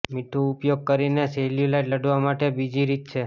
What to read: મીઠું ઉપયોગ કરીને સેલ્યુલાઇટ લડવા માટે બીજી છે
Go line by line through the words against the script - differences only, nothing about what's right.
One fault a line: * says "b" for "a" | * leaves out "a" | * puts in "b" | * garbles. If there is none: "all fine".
* puts in "રીત"